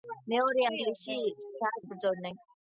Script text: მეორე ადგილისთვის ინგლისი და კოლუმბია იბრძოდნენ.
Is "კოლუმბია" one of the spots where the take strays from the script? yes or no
yes